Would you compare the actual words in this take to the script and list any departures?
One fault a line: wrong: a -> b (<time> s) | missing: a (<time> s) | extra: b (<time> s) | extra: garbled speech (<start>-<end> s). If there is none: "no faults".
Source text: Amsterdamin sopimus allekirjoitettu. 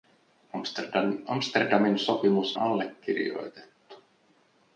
no faults